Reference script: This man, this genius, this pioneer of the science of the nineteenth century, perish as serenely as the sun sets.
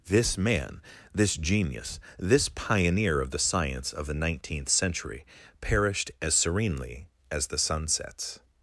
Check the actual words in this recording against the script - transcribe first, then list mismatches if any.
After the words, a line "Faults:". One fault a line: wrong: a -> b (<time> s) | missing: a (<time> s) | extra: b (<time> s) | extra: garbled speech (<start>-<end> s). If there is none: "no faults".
This man, this genius, this pioneer of the science of the nineteenth century, perished as serenely as the sun sets.
Faults:
wrong: perish -> perished (5.6 s)